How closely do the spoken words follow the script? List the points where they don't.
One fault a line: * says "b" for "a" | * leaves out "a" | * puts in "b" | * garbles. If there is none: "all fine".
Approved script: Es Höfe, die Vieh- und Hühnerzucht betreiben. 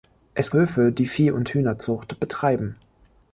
all fine